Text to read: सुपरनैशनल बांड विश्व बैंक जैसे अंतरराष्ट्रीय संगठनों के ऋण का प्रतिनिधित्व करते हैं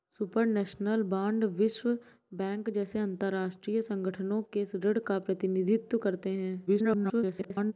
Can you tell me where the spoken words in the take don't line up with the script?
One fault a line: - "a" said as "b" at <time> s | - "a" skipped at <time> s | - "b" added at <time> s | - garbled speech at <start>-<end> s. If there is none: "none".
- garbled speech at 6.7-7.7 s